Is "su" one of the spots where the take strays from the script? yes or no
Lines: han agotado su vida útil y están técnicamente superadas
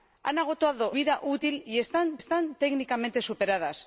yes